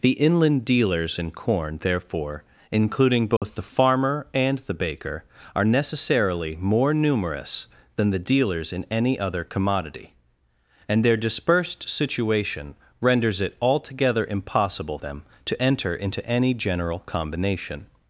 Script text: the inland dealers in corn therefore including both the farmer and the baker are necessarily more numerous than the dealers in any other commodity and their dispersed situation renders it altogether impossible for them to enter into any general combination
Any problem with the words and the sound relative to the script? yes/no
yes